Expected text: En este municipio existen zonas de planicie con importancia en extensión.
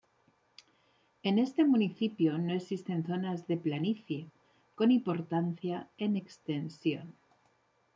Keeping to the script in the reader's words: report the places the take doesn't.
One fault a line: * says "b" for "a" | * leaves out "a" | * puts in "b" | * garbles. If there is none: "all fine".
* puts in "no"